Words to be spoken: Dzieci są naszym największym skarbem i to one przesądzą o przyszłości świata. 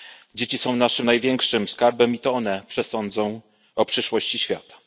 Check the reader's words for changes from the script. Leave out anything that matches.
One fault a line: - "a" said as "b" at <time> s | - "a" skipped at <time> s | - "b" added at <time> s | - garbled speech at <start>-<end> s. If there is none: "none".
none